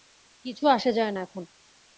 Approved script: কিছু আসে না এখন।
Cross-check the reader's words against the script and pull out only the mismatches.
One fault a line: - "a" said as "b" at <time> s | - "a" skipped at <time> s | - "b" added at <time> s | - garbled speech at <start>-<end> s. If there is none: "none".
- "যায়" added at 0.9 s